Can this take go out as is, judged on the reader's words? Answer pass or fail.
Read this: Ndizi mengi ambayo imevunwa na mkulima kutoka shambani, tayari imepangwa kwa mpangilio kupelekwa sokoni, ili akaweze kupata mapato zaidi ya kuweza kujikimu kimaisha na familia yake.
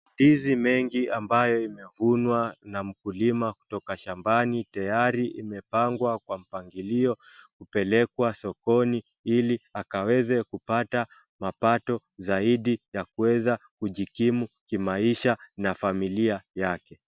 pass